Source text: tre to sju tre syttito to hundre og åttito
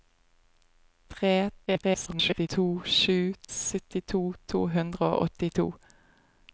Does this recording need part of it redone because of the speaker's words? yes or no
yes